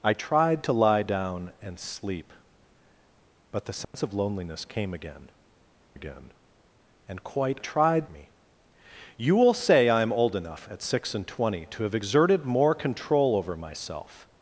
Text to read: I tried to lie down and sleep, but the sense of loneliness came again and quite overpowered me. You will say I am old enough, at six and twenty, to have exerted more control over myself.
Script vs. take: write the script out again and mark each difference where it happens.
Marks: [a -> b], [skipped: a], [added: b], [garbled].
I tried to lie down and sleep, but the sense of loneliness came again [added: again] and quite [overpowered -> tried] me. You will say I am old enough, at six and twenty, to have exerted more control over myself.